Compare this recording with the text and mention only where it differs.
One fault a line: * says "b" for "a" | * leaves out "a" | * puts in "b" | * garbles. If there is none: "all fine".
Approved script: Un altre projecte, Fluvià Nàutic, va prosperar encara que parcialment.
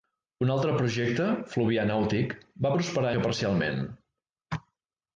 * leaves out "encara"